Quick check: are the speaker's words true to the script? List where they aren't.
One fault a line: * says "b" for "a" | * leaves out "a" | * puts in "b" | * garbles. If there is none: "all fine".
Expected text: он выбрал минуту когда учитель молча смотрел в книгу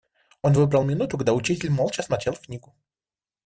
all fine